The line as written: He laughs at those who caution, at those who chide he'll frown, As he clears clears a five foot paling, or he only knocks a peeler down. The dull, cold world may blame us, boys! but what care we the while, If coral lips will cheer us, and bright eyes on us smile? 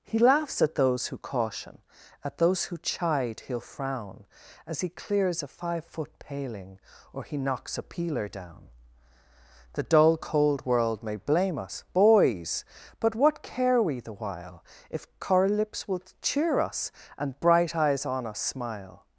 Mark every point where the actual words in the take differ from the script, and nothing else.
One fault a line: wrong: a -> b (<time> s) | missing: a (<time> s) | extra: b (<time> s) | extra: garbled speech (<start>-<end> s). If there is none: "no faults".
missing: clears (5.4 s)
missing: only (7.4 s)